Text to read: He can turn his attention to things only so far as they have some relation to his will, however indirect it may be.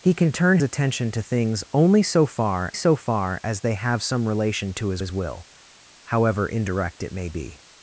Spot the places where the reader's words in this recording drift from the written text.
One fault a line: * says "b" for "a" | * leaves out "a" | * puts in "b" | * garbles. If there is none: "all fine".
* leaves out "his"
* puts in "so far"
* puts in "his"